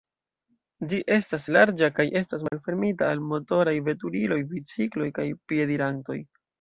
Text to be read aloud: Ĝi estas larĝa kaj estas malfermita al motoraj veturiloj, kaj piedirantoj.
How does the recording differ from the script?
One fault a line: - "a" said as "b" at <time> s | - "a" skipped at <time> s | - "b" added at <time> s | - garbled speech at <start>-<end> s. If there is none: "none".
- "bicikloj" added at 4.5 s